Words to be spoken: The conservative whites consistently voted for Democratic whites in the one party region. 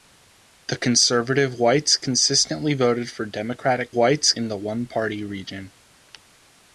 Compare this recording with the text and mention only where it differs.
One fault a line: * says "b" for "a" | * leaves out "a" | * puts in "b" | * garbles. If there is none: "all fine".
all fine